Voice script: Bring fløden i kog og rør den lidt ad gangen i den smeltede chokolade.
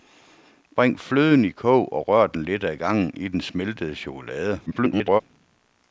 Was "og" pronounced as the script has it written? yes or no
yes